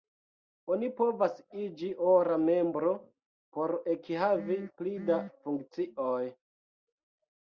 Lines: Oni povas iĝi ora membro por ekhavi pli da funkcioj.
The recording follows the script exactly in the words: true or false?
true